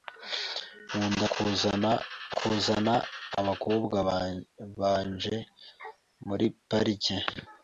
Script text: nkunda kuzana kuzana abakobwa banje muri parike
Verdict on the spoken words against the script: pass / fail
pass